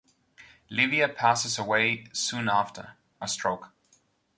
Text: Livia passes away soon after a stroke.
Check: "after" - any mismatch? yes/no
no